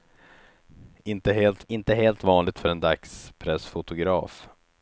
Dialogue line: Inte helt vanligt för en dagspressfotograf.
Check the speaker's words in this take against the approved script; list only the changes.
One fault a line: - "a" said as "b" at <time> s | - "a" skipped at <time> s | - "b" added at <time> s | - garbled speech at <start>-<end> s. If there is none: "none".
- "inte helt" added at 1.7 s